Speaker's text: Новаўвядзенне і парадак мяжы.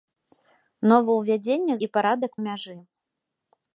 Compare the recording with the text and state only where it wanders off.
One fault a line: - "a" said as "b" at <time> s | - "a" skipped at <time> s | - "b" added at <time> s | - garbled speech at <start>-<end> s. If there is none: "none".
none